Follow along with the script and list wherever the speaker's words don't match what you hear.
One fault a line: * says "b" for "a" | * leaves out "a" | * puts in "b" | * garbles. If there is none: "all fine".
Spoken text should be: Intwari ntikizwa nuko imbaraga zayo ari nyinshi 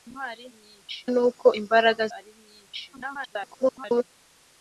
* says "nyinshi" for "ntikizwa"
* leaves out "zayo"
* garbles